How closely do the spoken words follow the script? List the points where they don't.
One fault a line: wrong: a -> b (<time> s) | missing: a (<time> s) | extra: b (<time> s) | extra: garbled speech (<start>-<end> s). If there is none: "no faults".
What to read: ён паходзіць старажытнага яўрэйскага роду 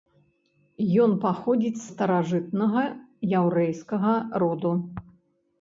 no faults